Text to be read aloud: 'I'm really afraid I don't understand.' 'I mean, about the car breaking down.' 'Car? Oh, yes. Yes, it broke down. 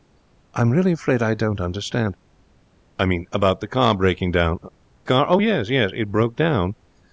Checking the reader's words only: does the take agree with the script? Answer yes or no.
yes